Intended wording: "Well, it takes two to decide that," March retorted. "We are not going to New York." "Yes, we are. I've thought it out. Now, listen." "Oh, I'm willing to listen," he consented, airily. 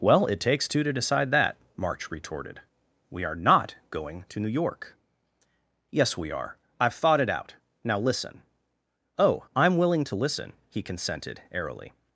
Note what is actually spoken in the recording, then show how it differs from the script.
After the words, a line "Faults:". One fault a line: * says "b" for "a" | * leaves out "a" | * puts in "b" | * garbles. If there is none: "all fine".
"Well, it takes two to decide that," March retorted. "We are not going to New York." "Yes, we are. I've thought it out. Now, listen." "Oh, I'm willing to listen," he consented, airily.
Faults:
all fine